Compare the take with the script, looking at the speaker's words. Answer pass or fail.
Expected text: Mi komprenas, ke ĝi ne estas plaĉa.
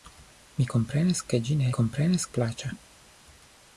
fail